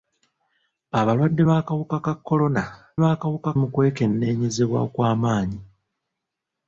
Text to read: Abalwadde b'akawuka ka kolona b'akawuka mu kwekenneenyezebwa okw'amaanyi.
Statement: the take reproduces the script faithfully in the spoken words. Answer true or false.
true